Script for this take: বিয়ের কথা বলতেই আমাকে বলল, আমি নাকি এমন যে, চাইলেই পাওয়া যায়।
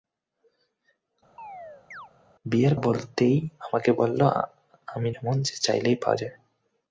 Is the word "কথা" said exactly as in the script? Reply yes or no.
no